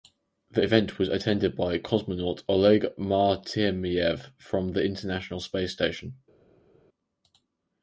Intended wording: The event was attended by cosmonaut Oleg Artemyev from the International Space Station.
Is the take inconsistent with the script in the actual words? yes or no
no